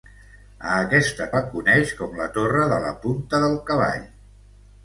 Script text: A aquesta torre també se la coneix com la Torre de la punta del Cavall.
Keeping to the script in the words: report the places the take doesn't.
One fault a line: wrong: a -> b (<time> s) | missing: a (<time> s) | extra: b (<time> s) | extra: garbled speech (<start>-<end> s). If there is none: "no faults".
missing: torre també se (1.3 s)